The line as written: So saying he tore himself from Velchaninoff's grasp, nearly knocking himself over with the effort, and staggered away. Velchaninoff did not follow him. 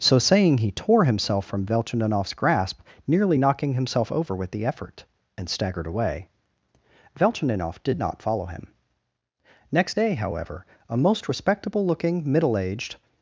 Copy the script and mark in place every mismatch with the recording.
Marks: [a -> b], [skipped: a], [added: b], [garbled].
So saying he tore himself from Velchaninoff's grasp, nearly knocking himself over with the effort, and staggered away. Velchaninoff did not follow him. [added: Next day however a most respectable looking middle aged]